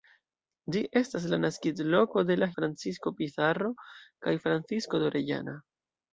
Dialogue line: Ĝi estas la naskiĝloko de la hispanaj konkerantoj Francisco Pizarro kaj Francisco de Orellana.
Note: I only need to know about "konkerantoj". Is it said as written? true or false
false